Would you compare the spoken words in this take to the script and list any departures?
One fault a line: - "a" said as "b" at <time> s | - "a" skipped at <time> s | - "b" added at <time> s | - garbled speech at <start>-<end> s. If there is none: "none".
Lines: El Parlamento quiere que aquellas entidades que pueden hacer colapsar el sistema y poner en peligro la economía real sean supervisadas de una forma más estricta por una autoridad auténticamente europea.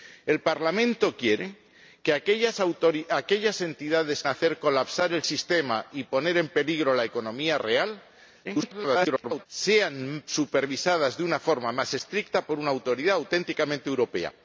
- "que pueden" skipped at 4.2 s
- garbled speech at 8.4-9.5 s